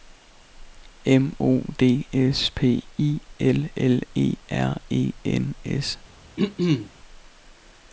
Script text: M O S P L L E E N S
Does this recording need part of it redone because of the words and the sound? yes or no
yes